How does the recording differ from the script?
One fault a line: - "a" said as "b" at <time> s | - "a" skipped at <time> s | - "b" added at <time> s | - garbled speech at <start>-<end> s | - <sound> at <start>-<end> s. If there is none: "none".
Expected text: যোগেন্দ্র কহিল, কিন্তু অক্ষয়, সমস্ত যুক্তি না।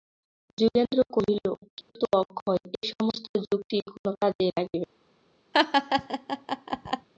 - dropout at 1.8-1.9 s
- "এ" added at 2.8 s
- "কোনো কাজেই লাগিবে" added at 3.9 s
- laugh at 5.5-7.1 s